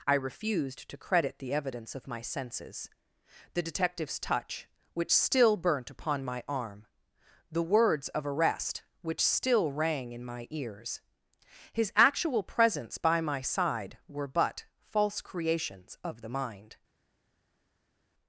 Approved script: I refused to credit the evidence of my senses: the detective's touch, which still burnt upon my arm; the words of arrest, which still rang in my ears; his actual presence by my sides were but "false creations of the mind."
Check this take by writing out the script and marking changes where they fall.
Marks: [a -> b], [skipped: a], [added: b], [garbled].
I refused to credit the evidence of my senses: the detective's touch, which still burnt upon my arm; the words of arrest, which still rang in my ears; his actual presence by my [sides -> side] were but "false creations of the mind."